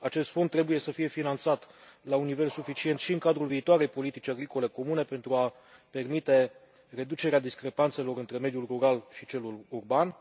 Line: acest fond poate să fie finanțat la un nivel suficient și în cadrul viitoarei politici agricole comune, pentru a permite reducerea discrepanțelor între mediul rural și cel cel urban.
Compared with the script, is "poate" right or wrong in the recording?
wrong